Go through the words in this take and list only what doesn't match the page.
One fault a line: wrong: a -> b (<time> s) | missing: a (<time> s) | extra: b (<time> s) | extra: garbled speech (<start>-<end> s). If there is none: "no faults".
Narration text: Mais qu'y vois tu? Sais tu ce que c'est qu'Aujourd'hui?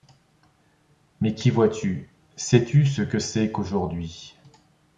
no faults